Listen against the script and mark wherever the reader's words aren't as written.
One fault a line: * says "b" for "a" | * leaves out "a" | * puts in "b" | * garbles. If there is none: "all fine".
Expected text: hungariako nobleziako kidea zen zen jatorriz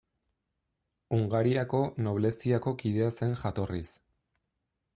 * leaves out "zen"